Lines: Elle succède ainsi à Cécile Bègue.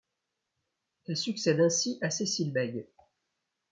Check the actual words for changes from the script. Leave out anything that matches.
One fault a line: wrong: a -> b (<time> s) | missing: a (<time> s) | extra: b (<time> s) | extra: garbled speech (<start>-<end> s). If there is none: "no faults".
no faults